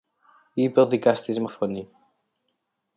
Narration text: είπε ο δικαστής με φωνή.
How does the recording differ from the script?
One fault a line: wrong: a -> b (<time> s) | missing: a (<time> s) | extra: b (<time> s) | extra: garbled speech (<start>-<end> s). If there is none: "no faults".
no faults